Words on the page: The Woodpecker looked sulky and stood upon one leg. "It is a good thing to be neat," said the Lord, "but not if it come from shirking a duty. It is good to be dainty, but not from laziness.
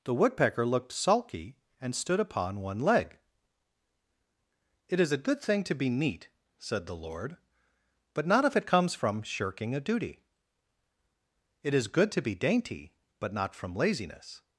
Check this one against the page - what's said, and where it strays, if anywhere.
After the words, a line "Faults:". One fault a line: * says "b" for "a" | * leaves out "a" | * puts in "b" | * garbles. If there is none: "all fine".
The Woodpecker looked sulky and stood upon one leg. "It is a good thing to be neat," said the Lord, "but not if it comes from shirking a duty. It is good to be dainty, but not from laziness.
Faults:
* says "comes" for "come"